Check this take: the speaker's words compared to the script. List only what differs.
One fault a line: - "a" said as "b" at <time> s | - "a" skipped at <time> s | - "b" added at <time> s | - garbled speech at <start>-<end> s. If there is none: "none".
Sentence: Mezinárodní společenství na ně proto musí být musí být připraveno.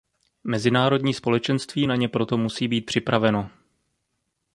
- "musí být" skipped at 2.9 s